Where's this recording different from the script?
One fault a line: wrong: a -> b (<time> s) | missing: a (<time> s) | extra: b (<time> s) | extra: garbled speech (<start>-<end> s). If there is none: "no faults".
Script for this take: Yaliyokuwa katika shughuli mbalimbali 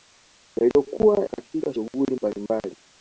no faults